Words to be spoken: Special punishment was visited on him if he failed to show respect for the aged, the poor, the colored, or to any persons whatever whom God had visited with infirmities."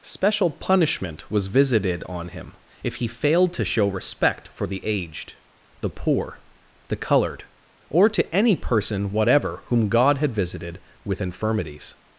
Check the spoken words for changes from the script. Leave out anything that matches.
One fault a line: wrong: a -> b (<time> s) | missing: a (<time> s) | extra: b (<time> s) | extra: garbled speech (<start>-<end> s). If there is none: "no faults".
wrong: persons -> person (8.6 s)